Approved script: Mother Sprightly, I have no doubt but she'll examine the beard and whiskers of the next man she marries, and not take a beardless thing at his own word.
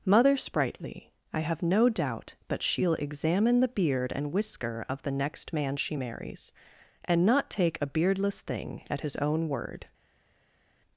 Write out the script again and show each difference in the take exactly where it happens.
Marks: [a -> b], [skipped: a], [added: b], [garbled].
Mother Sprightly, I have no doubt but she'll examine the beard and [whiskers -> whisker] of the next man she marries, and not take a beardless thing at his own word.